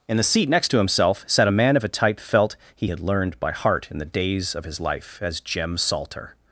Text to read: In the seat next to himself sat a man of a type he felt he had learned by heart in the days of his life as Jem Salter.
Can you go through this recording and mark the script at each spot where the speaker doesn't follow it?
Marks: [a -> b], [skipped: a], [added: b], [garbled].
In the seat next to himself sat a man of a type [skipped: he] felt he had learned by heart in the days of his life as Jem Salter.